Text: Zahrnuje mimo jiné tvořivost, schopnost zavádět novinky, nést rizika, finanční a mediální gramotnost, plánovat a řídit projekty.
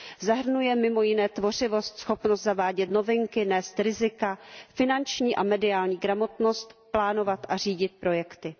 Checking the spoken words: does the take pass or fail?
pass